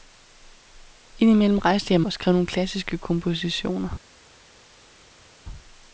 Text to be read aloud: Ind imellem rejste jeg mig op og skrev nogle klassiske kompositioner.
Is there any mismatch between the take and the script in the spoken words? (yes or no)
yes